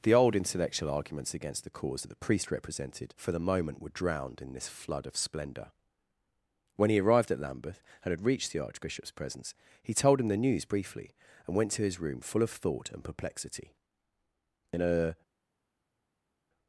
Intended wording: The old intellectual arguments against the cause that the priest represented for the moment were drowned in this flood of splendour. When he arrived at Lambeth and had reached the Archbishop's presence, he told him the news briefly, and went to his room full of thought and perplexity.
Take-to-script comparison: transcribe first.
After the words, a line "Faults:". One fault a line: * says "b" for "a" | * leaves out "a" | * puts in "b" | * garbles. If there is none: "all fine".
The old intellectual arguments against the cause that the priest represented for the moment were drowned in this flood of splendour. When he arrived at Lambeth and had reached the Archbishop's presence, he told him the news briefly, and went to his room full of thought and perplexity. In a
Faults:
* puts in "In a"